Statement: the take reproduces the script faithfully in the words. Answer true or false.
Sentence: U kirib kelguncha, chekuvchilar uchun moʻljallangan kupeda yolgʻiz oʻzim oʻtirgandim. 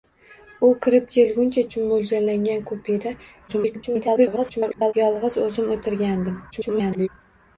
false